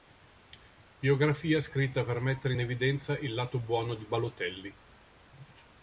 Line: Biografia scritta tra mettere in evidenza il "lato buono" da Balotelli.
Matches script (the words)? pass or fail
fail